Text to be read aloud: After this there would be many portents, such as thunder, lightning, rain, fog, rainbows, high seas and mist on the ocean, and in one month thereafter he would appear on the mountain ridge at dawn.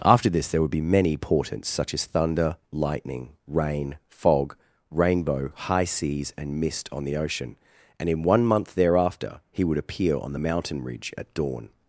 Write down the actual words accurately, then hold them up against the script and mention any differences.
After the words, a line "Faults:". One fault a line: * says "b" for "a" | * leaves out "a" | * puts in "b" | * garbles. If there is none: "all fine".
After this there would be many portents, such as thunder, lightning, rain, fog, rainbow, high seas and mist on the ocean, and in one month thereafter he would appear on the mountain ridge at dawn.
Faults:
* says "rainbow" for "rainbows"